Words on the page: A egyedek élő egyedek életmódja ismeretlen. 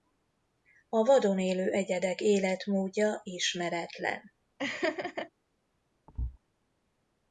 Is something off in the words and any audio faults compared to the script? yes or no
yes